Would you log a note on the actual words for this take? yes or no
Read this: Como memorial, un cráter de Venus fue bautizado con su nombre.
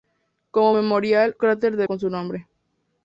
yes